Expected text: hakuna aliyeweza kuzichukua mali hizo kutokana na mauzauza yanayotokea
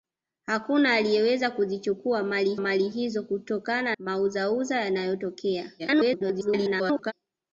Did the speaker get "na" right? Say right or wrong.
wrong